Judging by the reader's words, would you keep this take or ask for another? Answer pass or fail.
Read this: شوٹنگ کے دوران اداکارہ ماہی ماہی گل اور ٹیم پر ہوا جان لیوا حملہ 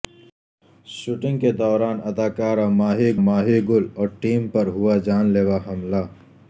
pass